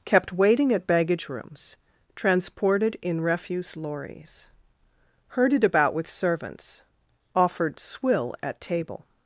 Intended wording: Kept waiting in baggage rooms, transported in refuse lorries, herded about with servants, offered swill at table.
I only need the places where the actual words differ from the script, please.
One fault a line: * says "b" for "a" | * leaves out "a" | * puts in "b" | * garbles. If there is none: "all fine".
* says "at" for "in"